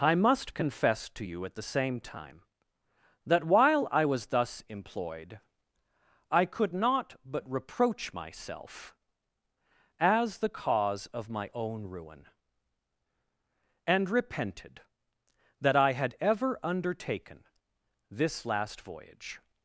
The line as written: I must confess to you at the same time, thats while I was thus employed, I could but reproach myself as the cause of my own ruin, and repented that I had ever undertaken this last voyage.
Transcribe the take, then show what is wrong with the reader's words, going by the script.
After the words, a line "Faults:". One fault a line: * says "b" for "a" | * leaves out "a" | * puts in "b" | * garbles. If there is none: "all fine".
I must confess to you at the same time, that while I was thus employed, I could not but reproach myself as the cause of my own ruin, and repented that I had ever undertaken this last voyage.
Faults:
* says "that" for "thats"
* puts in "not"